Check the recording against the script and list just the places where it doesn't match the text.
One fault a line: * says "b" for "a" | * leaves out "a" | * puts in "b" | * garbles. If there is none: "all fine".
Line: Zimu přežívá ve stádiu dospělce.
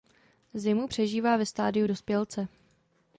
all fine